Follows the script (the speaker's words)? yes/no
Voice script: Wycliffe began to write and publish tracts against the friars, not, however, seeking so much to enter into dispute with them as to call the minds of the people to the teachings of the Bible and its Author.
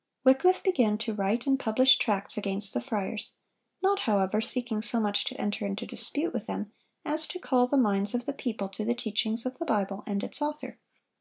yes